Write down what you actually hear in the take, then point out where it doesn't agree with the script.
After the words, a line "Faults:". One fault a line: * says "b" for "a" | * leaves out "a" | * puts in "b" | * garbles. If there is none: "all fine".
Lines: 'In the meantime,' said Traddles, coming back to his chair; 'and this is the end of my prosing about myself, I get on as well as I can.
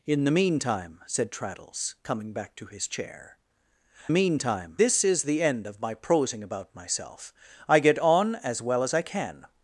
'In the meantime,' said Traddles, coming back to his chair; 'meantime this is the end of my prosing about myself, I get on as well as I can.
Faults:
* says "meantime" for "and"